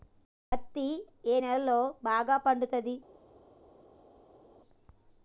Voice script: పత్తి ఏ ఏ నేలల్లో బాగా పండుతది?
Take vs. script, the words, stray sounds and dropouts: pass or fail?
fail